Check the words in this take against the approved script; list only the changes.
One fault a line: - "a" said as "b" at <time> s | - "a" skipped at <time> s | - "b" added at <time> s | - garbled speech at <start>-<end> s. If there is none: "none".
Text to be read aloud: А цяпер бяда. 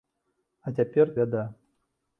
none